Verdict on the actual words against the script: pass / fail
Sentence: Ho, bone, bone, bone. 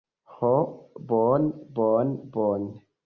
pass